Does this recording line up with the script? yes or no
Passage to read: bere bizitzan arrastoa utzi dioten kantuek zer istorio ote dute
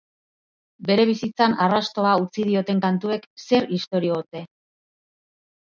no